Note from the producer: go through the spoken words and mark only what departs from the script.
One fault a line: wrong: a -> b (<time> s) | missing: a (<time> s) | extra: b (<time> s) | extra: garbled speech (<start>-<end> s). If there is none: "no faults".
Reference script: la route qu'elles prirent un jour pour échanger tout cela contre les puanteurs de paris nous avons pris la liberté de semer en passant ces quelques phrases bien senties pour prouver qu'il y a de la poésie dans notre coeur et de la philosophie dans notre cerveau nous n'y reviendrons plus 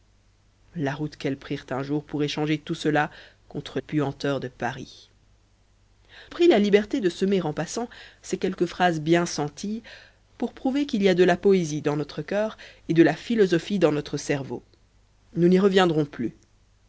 missing: les (3.8 s)
missing: nous avons (5.1 s)